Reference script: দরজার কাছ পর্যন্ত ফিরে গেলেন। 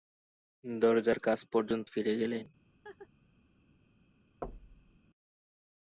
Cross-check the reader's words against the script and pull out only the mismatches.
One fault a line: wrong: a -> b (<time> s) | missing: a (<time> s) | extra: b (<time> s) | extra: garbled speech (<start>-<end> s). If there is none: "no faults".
no faults